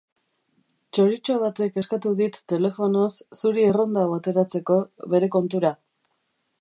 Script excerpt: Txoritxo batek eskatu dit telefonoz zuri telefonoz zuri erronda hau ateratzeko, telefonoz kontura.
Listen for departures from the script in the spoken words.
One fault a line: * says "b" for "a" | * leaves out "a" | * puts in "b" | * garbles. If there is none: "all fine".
* leaves out "telefonoz zuri"
* says "bere" for "telefonoz"